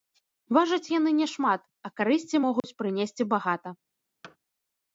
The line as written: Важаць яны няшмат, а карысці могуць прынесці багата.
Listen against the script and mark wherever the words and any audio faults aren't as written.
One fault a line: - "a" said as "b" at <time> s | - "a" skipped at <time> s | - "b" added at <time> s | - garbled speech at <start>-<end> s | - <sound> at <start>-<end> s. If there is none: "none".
- dropout at 2.6-2.6 s
- thud at 4.2-4.4 s